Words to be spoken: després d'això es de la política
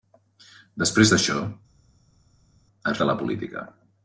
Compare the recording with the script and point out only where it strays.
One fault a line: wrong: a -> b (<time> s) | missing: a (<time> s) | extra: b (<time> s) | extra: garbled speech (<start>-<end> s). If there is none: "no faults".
no faults